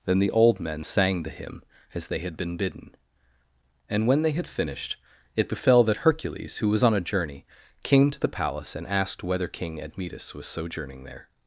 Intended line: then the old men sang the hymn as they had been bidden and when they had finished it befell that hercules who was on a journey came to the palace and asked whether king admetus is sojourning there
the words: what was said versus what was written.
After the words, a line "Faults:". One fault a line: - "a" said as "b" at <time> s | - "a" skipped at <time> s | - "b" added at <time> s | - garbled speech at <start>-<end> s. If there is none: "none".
then the old men sang the hymn as they had been bidden and when they had finished it befell that hercules who was on a journey came to the palace and asked whether king admetus was sojourning there
Faults:
- "is" said as "was" at 10.3 s